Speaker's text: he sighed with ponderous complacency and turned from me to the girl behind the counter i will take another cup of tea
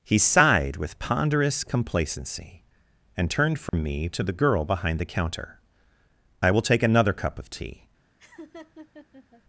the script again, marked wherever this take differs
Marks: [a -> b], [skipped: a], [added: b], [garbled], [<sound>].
he sighed with ponderous complacency and turned from [dropout] me to the girl behind the counter i will take another cup of tea [laugh]